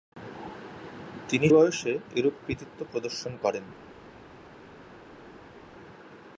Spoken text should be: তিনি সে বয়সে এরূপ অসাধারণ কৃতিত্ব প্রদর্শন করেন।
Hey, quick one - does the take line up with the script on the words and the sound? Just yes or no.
no